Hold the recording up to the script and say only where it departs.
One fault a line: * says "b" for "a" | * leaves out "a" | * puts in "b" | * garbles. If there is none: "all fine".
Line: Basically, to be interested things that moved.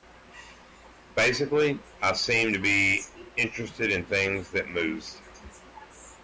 * puts in "I seemed"
* puts in "in"